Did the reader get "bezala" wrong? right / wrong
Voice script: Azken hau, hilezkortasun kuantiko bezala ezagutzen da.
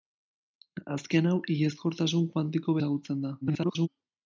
wrong